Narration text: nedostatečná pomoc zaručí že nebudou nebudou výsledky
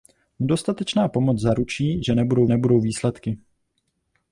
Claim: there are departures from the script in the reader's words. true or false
false